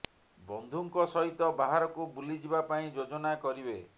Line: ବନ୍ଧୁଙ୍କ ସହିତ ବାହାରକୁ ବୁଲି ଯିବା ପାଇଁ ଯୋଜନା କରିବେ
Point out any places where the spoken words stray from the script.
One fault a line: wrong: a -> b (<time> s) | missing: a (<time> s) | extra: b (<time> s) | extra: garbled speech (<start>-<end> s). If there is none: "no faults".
no faults